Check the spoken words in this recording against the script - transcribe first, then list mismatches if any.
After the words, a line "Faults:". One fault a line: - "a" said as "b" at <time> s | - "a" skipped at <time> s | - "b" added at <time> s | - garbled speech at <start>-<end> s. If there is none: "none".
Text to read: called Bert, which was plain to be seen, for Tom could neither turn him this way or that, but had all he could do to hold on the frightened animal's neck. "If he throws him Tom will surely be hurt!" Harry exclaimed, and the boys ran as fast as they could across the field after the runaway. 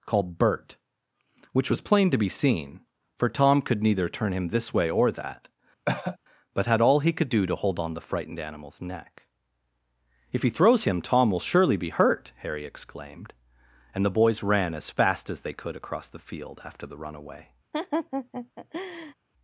called Bert, which was plain to be seen, for Tom could neither turn him this way or that, but had all he could do to hold on the frightened animal's neck. "If he throws him Tom will surely be hurt!" Harry exclaimed, and the boys ran as fast as they could across the field after the runaway.
Faults:
none